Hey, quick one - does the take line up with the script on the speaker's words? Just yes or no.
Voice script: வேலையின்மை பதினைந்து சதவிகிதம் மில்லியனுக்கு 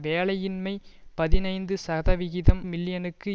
yes